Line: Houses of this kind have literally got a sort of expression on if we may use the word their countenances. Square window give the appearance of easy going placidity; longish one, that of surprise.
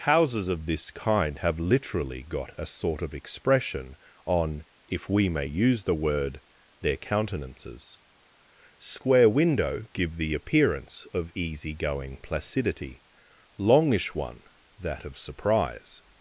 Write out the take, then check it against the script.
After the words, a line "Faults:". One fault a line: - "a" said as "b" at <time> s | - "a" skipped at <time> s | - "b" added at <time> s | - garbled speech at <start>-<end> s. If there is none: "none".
Houses of this kind have literally got a sort of expression on if we may use the word their countenances. Square window give the appearance of easy going placidity; longish one, that of surprise.
Faults:
none